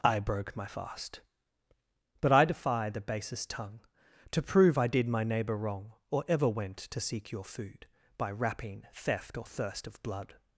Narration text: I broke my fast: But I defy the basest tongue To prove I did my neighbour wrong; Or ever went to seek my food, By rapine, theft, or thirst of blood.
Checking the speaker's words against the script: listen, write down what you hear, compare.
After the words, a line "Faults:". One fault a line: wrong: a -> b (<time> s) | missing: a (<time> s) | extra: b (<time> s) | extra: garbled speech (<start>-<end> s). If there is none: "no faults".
I broke my fast: But I defy the basest tongue To prove I did my neighbour wrong; Or ever went to seek your food, By rapine, theft, or thirst of blood.
Faults:
wrong: my -> your (7.3 s)